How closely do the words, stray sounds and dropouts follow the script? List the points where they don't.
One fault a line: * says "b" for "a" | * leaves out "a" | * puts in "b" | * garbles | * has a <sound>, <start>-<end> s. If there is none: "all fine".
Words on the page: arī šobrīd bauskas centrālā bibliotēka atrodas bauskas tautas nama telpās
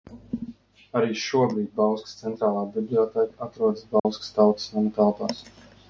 * has a dropout, 4.0-4.0 s